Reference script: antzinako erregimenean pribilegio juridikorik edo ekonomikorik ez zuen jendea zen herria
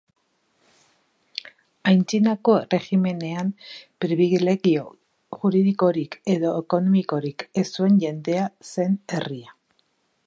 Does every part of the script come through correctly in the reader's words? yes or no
yes